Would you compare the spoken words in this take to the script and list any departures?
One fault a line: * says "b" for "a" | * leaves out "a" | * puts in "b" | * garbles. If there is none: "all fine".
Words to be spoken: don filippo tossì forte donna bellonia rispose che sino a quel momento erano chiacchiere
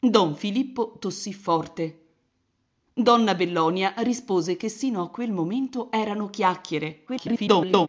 * garbles